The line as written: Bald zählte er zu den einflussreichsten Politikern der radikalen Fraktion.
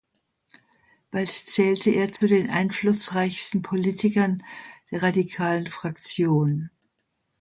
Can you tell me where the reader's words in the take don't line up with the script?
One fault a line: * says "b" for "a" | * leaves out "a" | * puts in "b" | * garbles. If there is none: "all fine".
all fine